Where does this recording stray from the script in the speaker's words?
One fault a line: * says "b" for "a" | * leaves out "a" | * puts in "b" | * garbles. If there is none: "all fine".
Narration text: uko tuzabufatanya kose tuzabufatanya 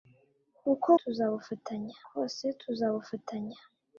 all fine